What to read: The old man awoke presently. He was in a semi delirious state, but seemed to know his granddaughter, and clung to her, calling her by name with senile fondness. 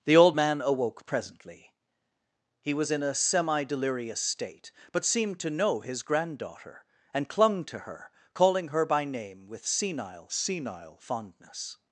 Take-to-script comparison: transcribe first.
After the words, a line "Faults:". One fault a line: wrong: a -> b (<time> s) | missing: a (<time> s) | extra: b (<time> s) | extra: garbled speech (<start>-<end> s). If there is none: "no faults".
The old man awoke presently. He was in a semi delirious state, but seemed to know his granddaughter, and clung to her, calling her by name with senile senile fondness.
Faults:
extra: senile (10.3 s)